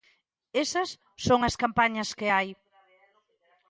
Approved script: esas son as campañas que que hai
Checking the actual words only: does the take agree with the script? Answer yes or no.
no